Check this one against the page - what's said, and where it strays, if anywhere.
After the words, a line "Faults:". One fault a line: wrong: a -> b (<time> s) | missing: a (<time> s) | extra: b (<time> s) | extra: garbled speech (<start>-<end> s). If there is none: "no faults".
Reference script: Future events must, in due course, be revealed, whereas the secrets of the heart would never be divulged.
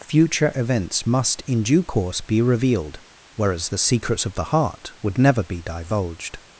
Future events must, in due course, be revealed, whereas the secrets of the heart would never be divulged.
Faults:
no faults